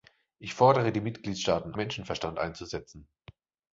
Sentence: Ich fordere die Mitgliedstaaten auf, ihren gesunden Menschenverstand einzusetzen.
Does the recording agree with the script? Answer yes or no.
no